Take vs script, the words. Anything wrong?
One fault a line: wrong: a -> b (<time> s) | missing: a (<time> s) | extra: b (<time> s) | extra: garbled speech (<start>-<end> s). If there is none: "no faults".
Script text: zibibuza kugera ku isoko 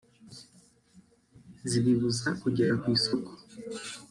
no faults